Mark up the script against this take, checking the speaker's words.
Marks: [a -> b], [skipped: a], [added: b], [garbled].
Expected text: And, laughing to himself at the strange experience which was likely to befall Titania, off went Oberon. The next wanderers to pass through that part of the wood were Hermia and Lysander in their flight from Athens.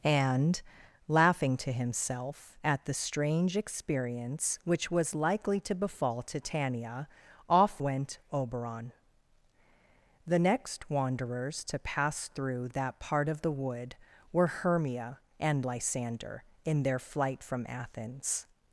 And, laughing to himself at the strange experience which was likely to befall Titania, off went Oberon. The next wanderers to pass through that part of the wood were Hermia and Lysander in their flight from Athens.